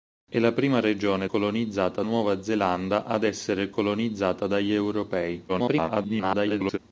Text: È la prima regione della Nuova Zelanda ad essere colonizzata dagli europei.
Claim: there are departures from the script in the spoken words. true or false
true